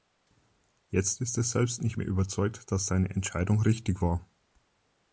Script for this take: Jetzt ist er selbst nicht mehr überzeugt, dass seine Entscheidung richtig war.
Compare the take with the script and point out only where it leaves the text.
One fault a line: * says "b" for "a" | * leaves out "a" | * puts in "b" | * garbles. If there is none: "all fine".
all fine